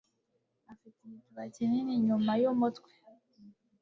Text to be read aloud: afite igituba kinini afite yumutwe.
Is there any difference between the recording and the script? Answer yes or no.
yes